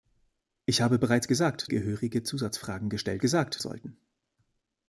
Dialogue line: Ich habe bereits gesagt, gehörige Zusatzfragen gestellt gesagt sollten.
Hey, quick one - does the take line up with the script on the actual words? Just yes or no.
yes